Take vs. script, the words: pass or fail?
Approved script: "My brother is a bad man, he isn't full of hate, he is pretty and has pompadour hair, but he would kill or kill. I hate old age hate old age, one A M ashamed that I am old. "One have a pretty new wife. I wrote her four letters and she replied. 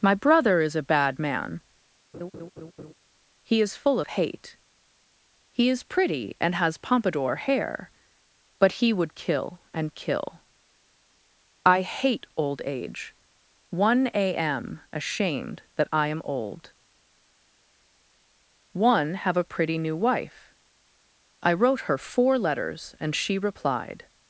fail